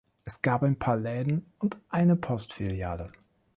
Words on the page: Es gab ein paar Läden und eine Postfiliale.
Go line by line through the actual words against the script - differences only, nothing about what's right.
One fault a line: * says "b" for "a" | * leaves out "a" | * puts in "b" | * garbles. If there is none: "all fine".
all fine